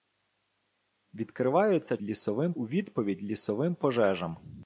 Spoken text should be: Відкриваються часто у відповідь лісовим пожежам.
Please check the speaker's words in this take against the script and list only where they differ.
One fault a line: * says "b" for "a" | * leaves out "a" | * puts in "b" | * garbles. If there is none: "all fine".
* says "лісовим" for "часто"